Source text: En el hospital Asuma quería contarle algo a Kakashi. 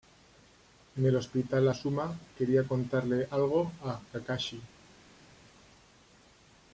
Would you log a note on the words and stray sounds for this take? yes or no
no